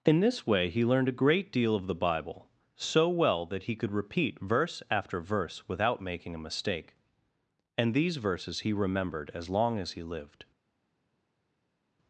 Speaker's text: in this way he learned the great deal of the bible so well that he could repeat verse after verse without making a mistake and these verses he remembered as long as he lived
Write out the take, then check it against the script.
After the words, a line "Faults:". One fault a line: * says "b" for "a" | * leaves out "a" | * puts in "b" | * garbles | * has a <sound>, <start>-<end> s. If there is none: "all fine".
in this way he learned a great deal of the bible so well that he could repeat verse after verse without making a mistake and these verses he remembered as long as he lived
Faults:
* says "a" for "the"